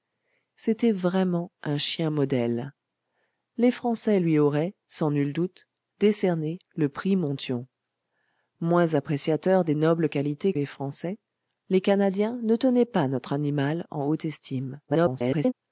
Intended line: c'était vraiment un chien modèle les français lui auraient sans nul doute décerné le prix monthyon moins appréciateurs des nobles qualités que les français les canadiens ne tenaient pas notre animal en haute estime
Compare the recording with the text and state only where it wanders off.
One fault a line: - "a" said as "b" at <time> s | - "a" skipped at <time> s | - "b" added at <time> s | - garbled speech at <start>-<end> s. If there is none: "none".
- "que" skipped at 10.5 s
- garbled speech at 14.9-15.5 s